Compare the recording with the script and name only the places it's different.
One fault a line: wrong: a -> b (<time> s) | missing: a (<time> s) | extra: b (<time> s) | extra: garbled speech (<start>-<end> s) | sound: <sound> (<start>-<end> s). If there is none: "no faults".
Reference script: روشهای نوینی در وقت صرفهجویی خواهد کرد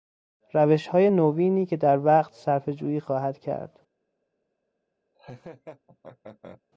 extra: که (1.6 s)
sound: laugh (5.1-6.6 s)